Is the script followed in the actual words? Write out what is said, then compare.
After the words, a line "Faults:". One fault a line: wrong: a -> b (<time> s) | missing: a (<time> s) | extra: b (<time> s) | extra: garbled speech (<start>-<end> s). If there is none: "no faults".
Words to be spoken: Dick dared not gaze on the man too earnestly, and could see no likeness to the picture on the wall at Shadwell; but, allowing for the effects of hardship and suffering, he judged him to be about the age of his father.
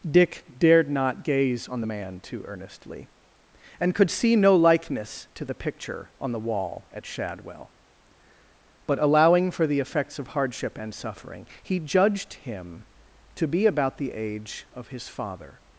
Dick dared not gaze on the man too earnestly, and could see no likeness to the picture on the wall at Shadwell; but, allowing for the effects of hardship and suffering, he judged him to be about the age of his father.
Faults:
no faults